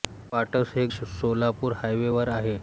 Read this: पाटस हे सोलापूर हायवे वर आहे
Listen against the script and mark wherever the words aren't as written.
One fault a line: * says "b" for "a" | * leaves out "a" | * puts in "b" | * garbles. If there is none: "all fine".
all fine